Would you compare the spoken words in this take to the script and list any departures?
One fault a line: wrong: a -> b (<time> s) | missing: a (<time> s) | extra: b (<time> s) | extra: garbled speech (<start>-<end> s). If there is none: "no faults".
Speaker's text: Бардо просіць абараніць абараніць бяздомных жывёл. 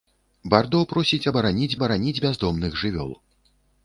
no faults